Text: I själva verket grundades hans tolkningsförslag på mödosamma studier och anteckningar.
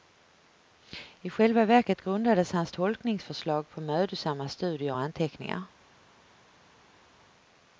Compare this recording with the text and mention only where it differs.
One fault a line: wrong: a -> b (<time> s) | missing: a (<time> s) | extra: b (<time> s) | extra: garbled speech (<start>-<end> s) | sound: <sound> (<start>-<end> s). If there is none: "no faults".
no faults